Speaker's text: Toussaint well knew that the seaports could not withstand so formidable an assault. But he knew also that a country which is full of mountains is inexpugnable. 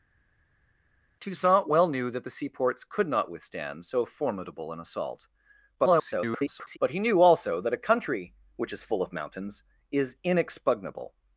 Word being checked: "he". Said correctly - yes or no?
yes